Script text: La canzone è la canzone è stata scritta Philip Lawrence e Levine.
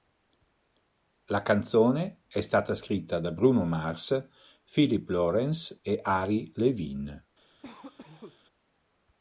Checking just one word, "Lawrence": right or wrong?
right